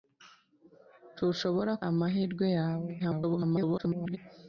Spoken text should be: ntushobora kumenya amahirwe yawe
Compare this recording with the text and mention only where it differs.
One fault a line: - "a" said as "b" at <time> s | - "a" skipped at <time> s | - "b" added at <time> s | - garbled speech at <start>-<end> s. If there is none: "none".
- "kumenya" skipped at 1.7 s
- garbled speech at 3.0-4.2 s